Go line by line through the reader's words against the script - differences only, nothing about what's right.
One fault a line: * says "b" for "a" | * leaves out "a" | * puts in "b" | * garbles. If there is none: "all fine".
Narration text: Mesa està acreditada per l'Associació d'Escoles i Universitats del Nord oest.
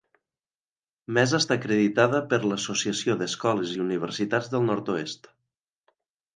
all fine